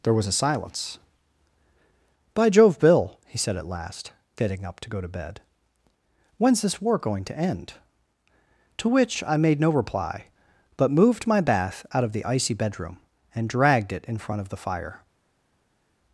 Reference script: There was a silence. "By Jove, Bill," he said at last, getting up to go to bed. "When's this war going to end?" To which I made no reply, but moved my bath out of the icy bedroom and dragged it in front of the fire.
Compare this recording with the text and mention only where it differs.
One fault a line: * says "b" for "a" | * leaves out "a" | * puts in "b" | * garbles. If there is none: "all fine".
all fine